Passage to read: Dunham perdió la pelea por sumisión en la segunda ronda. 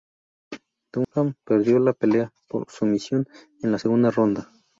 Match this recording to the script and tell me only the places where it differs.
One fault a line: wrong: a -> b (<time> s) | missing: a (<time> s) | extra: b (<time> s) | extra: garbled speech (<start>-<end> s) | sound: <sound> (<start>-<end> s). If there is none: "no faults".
sound: dropout (1.0-1.1 s)